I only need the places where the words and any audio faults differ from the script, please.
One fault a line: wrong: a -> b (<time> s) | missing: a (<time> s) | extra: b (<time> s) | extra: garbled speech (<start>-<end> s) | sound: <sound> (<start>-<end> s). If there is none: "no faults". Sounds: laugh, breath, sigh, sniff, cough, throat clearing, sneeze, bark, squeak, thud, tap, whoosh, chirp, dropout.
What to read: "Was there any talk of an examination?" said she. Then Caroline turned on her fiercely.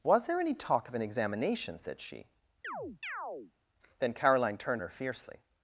sound: chirp (2.6-3.5 s)
missing: on (4.8 s)